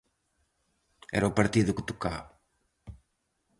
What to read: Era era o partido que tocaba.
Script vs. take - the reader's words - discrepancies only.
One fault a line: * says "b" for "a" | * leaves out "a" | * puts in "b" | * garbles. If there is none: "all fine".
* leaves out "era"